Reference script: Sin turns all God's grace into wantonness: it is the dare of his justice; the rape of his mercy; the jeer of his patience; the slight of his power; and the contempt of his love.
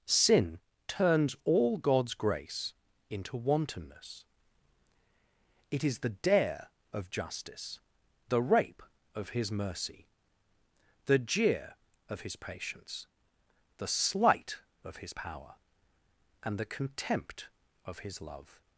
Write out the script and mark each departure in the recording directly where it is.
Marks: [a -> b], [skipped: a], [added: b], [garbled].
Sin turns all God's grace into wantonness: it is the dare of [skipped: his] justice; the rape of his mercy; the jeer of his patience; the slight of his power; and the contempt of his love.